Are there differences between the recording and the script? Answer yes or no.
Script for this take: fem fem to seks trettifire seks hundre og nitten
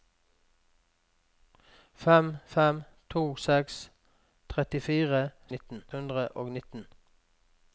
yes